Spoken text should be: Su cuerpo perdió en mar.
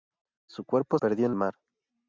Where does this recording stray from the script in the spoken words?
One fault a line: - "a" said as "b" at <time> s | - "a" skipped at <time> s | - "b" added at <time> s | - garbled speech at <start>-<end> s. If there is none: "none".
none